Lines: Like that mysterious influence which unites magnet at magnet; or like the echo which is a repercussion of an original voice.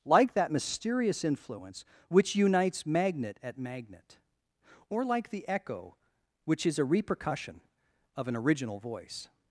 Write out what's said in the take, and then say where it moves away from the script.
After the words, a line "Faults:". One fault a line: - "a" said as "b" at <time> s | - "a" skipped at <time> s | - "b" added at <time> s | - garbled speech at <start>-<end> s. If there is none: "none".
Like that mysterious influence which unites magnet at magnet; or like the echo which is a repercussion of an original voice.
Faults:
none